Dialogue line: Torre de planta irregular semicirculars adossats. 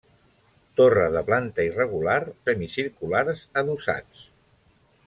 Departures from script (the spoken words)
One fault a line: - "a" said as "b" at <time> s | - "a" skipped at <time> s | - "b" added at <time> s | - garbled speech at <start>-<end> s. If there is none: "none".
none